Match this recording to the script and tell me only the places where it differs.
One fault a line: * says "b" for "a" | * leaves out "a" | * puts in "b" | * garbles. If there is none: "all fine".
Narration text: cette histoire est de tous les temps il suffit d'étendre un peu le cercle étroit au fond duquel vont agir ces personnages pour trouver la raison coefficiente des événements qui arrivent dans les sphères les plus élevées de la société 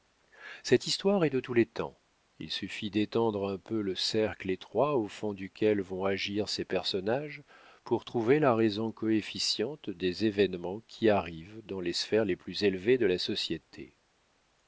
all fine